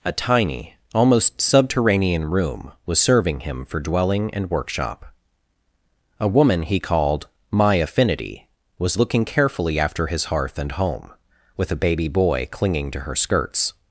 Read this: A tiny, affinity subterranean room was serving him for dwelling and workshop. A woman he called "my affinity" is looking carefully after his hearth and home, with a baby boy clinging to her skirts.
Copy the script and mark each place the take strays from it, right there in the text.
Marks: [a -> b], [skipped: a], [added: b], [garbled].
A tiny, [affinity -> almost] subterranean room was serving him for dwelling and workshop. A woman he called "my affinity" [is -> was] looking carefully after his hearth and home, with a baby boy clinging to her skirts.